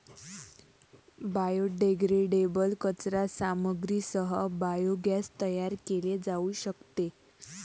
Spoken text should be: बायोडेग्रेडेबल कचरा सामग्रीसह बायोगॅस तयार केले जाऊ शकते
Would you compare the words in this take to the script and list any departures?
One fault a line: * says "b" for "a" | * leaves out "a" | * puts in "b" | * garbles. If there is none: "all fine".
all fine